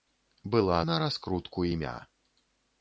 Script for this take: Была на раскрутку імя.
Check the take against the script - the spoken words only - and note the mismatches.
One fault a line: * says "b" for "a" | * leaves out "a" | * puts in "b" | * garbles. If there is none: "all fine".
all fine